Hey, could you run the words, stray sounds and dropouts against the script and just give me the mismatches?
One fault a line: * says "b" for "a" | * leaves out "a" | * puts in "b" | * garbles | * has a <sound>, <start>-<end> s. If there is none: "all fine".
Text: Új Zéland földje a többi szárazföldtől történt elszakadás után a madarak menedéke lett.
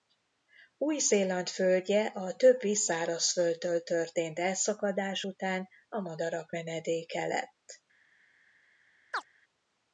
* has a chirp, 9.1-9.2 s